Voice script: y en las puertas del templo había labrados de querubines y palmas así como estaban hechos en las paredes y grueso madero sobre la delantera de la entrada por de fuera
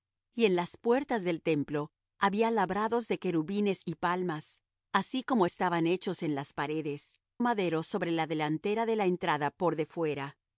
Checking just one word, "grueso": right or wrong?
wrong